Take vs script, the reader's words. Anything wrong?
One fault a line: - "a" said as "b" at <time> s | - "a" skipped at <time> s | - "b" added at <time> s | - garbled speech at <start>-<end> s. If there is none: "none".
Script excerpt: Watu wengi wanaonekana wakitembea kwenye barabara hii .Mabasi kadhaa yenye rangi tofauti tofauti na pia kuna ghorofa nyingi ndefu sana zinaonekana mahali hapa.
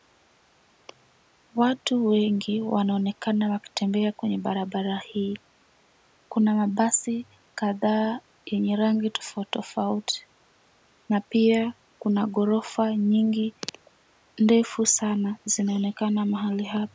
- "Kuna" added at 6.3 s